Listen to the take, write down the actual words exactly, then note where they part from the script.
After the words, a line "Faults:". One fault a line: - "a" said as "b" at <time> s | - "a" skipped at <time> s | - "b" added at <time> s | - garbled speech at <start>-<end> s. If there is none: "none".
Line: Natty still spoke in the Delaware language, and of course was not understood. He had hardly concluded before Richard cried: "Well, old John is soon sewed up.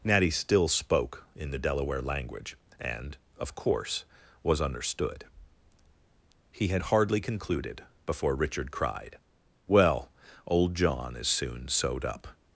Natty still spoke in the Delaware language, and of course was understood. He had hardly concluded before Richard cried: "Well, old John is soon sewed up.
Faults:
- "not" skipped at 4.6 s